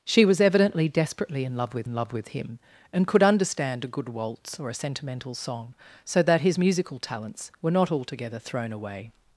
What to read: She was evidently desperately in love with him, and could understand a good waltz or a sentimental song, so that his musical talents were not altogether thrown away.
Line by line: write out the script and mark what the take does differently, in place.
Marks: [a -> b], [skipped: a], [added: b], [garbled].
She was evidently desperately in love with [added: in love with] him, and could understand a good waltz or a sentimental song, so that his musical talents were not altogether thrown away.